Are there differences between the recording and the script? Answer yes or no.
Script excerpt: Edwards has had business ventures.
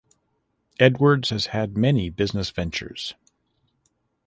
yes